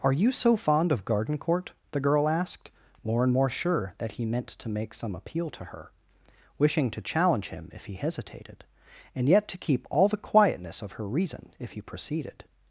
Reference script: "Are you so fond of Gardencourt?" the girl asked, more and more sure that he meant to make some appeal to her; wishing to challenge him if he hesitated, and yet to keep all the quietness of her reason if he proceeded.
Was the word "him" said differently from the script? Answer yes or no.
no